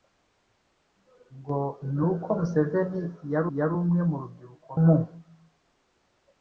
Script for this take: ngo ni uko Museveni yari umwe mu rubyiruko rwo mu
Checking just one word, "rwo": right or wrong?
wrong